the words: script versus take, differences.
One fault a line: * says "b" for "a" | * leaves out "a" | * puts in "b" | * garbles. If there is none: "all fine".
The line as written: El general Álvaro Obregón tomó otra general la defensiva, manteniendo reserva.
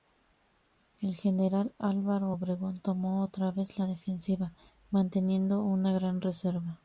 * says "vez" for "general"
* puts in "una gran"